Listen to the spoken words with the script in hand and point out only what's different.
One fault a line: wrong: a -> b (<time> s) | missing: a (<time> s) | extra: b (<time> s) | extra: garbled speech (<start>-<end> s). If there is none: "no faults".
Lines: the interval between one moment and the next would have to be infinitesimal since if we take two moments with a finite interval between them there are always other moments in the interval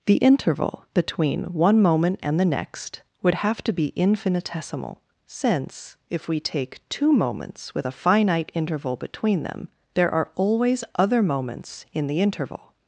no faults